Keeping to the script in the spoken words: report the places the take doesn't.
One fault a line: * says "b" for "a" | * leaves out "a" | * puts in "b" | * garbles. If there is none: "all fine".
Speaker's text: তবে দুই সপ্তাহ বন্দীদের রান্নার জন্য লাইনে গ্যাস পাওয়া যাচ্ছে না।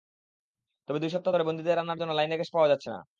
* puts in "ধরে"